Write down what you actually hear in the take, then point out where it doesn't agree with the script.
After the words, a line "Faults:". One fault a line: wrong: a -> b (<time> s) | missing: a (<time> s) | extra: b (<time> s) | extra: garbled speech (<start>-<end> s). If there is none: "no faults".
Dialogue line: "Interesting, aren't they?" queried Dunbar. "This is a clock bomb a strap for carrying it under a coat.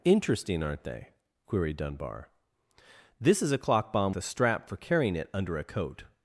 "Interesting, aren't they?" queried Dunbar. "This is a clock bomb a strap for carrying it under a coat.
Faults:
no faults